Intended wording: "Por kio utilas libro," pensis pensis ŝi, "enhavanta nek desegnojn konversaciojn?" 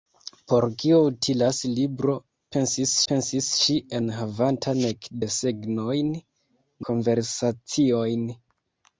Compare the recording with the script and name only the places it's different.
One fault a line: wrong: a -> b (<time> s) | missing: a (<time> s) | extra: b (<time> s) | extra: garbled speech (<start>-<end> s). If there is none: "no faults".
no faults